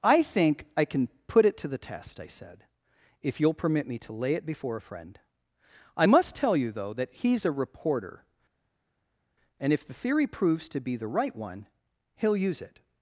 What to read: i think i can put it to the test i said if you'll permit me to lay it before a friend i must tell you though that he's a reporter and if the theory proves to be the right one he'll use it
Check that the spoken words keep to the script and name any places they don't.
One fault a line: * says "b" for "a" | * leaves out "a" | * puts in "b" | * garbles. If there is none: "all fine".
all fine